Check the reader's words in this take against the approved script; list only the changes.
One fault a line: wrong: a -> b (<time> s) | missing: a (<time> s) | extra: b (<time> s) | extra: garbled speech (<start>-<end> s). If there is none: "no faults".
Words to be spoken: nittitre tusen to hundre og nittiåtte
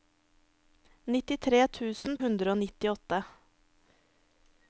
missing: to (2.2 s)